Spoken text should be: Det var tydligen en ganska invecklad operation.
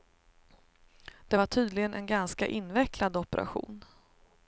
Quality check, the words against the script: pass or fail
pass